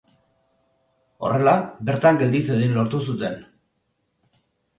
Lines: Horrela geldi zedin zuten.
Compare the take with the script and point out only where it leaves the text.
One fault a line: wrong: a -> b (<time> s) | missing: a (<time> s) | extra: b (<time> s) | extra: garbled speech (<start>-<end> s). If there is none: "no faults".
extra: bertan (1.9 s)
extra: lortu (2.8 s)